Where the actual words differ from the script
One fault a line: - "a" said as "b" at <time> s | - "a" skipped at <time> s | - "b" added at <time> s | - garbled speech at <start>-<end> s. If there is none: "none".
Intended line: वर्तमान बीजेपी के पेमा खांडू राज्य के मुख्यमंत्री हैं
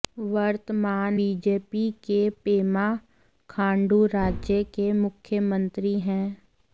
none